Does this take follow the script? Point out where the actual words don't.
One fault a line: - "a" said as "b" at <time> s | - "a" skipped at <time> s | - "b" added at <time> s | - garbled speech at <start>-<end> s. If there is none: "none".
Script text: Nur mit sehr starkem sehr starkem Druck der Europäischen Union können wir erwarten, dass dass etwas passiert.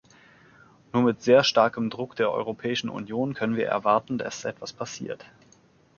- "sehr starkem" skipped at 1.9 s
- "dass" skipped at 4.4 s